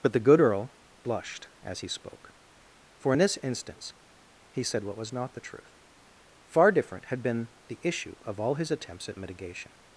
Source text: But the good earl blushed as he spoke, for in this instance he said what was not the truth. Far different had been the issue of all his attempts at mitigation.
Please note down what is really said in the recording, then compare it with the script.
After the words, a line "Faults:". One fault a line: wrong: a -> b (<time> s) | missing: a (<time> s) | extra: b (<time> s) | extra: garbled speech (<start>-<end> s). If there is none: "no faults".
But the good earl blushed as he spoke, for in this instance he said what was not the truth. Far different had been the issue of all his attempts at mitigation.
Faults:
no faults